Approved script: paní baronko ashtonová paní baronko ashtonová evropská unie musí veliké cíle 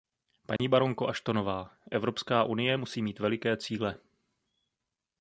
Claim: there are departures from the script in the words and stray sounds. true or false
true